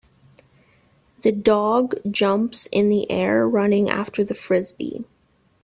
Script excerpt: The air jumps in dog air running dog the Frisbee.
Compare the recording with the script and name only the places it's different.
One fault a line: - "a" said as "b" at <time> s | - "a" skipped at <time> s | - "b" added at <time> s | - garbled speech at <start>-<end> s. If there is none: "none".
- "air" said as "dog" at 1.3 s
- "dog" said as "the" at 2.9 s
- "dog" said as "after" at 3.9 s